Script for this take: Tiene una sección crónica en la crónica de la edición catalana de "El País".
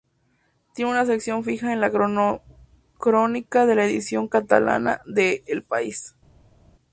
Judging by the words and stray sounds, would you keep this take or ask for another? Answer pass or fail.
fail